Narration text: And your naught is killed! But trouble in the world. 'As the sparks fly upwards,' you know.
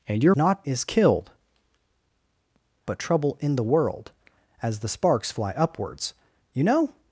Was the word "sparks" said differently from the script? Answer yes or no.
no